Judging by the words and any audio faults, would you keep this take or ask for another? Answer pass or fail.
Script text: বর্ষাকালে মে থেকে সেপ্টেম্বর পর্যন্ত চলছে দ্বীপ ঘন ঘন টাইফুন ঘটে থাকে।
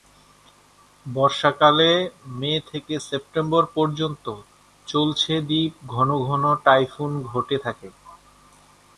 pass